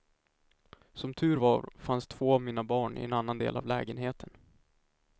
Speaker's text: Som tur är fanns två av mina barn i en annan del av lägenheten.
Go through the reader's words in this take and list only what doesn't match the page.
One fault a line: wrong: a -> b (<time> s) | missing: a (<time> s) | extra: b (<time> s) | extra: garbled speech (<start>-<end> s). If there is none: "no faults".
wrong: är -> var (1.3 s)